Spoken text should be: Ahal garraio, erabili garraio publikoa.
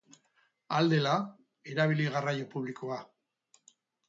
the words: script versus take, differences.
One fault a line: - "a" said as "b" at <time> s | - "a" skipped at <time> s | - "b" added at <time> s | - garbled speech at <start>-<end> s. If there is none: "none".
- "garraio" said as "dela" at 0.9 s